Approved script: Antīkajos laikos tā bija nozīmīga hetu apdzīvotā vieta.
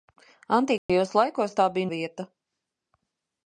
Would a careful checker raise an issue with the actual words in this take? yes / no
yes